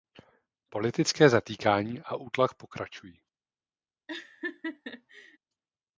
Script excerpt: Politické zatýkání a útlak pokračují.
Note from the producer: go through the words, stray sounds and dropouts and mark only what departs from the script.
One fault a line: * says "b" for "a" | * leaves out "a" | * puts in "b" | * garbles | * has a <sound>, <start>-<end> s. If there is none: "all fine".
* has a laugh, 4.1-5.4 s